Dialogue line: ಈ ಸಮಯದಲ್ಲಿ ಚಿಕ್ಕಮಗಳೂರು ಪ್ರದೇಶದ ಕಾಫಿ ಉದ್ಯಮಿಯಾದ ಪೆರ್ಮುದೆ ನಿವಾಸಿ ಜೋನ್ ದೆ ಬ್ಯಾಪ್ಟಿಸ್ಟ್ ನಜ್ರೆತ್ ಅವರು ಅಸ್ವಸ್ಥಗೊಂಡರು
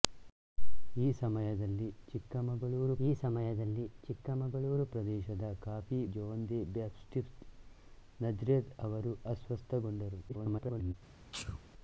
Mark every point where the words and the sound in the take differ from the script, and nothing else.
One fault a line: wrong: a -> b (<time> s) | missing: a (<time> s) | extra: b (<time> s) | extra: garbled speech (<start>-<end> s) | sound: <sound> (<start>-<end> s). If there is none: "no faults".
wrong: ಪ್ರದೇಶದ ಕಾಫಿ ಉದ್ಯಮಿಯಾದ ಪೆರ್ಮುದೆ ನಿವಾಸಿ -> ಈ ಸಮಯದಲ್ಲಿ ಚಿಕ್ಕಮಗಳೂರು ಪ್ರದೇಶದ ಕಾಫಿ (3.0 s)
extra: garbled speech (10.3-10.9 s)
sound: sneeze (11.3-11.6 s)